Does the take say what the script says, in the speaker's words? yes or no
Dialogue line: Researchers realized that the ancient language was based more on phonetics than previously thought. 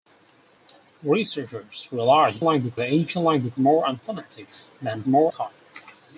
no